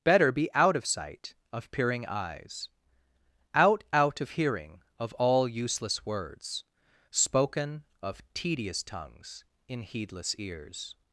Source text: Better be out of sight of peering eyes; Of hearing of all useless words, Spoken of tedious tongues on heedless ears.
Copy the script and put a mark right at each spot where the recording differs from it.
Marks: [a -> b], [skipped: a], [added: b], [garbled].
Better be out of sight of peering eyes; [added: Out out] Of hearing of all useless words, Spoken of tedious tongues [on -> in] heedless ears.